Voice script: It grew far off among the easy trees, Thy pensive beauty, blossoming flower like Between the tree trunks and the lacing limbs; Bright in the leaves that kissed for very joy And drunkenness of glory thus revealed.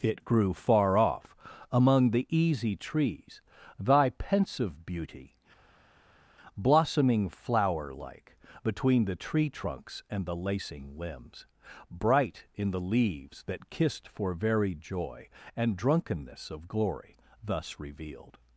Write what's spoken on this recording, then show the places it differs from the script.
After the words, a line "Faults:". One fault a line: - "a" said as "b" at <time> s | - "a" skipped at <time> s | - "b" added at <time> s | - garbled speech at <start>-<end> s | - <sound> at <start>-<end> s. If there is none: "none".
It grew far off among the easy trees, Thy pensive beauty, blossoming flower like Between the tree trunks and the lacing limbs; Bright in the leaves that kissed for very joy And drunkenness of glory thus revealed.
Faults:
none